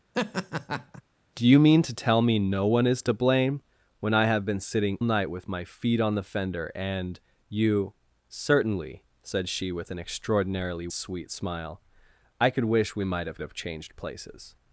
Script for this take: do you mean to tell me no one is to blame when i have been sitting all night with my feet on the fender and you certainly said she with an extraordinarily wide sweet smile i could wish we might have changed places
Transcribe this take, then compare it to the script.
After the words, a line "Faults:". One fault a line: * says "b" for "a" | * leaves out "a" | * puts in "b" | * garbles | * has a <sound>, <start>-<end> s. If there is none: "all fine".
do you mean to tell me no one is to blame when i have been sitting night with my feet on the fender and you certainly said she with an extraordinarily sweet smile i could wish we might have have changed places
Faults:
* has a laugh, 0.1-1.0 s
* leaves out "all"
* leaves out "wide"
* puts in "have"